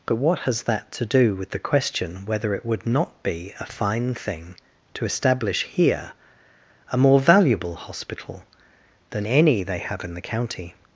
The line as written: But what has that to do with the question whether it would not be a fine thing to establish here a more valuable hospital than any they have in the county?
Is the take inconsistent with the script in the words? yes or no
no